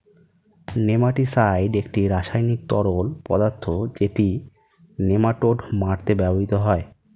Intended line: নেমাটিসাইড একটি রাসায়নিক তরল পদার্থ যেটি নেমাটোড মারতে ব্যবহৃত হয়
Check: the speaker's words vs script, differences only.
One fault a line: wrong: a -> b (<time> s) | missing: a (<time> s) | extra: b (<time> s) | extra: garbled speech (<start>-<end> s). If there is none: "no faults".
no faults